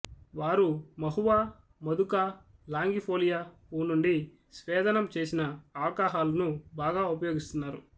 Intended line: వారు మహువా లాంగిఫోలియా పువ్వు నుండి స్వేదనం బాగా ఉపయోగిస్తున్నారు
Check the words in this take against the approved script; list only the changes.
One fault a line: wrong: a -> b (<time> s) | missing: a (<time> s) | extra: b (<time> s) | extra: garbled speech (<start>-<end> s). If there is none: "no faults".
extra: మధుకా (1.8 s)
extra: చేసిన ఆల్కహాలును (5.2 s)